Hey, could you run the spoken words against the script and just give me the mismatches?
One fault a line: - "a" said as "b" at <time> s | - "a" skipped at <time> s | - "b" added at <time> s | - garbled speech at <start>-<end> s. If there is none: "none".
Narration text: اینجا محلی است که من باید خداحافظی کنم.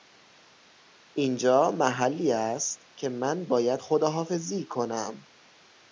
none